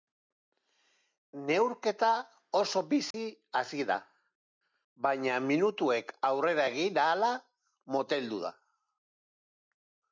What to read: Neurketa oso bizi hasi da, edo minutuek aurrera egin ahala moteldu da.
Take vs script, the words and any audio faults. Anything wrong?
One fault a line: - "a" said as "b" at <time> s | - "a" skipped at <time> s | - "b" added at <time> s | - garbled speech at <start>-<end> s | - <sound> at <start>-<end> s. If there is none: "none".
- dropout at 3.1-3.1 s
- "edo" said as "baina" at 5.1 s